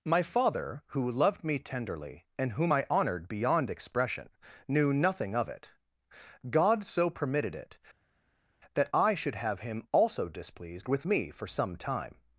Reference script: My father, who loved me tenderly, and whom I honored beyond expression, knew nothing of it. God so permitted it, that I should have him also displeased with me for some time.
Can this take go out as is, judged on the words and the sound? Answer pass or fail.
pass